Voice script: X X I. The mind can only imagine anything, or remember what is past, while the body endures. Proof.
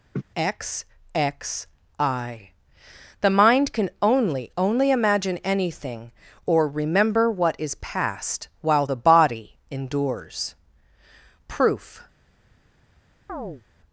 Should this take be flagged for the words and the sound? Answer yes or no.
yes